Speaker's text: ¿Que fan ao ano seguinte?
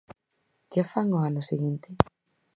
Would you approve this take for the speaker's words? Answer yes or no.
yes